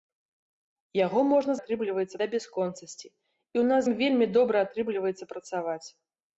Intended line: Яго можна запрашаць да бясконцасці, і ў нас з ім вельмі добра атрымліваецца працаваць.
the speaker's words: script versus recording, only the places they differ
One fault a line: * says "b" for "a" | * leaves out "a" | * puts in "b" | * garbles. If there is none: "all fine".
* says "атрымліваецца" for "запрашаць"
* leaves out "з"